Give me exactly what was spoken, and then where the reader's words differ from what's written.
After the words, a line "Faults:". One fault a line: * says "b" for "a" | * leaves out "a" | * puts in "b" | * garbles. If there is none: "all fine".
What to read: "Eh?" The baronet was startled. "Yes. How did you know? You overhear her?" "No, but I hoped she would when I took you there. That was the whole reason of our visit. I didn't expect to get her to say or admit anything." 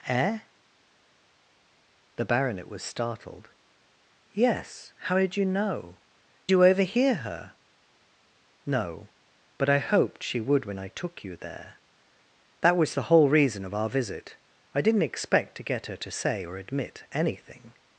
"Eh?" The baronet was startled. "Yes. How did you know? You overhear her?" "No, but I hoped she would when I took you there. That was the whole reason of our visit. I didn't expect to get her to say or admit anything."
Faults:
all fine